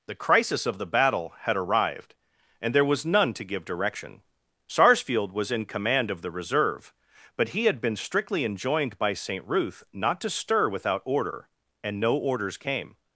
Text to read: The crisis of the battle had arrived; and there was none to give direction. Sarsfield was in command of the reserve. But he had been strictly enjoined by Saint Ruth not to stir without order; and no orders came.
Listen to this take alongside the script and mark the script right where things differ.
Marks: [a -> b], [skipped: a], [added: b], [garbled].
The crisis of the battle had arrived; and there was none to give direction. Sarsfield was in command of the reserve. But he had been strictly enjoined by Saint Ruth not to stir without order; and no orders came.